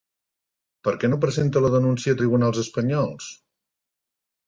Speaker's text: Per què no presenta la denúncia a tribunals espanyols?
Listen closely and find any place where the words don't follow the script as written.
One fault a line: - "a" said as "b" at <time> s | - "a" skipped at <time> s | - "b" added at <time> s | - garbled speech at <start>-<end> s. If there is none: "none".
none